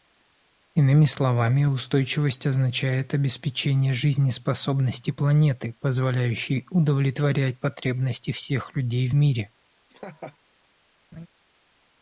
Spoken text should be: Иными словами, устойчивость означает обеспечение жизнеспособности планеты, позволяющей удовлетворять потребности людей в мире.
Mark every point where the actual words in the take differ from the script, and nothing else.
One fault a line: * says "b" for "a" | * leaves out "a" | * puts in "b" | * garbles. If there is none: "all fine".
* puts in "всех"